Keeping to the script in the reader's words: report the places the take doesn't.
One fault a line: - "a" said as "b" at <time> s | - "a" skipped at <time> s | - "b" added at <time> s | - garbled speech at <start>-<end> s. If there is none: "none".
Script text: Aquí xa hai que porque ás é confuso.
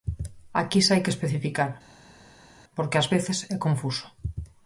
- "especificar" added at 1.1 s
- "veces" added at 3.1 s